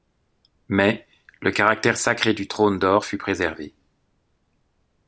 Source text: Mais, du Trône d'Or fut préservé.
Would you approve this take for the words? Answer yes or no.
no